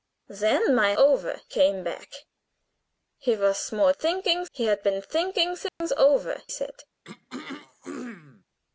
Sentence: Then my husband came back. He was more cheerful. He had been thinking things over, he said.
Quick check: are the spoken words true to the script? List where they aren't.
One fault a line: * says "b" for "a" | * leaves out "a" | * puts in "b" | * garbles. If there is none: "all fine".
* says "over" for "husband"
* says "thinking" for "cheerful"
* leaves out "he"